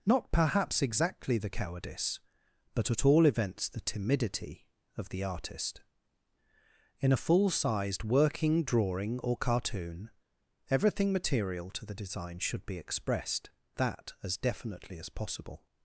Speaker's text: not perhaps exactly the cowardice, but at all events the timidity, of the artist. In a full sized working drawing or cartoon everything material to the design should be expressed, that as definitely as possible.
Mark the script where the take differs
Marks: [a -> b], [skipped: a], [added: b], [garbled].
not perhaps exactly the cowardice, but at all events the timidity, of the artist. In a full sized working drawing or cartoon everything material to the design should be expressed, that as definitely as possible.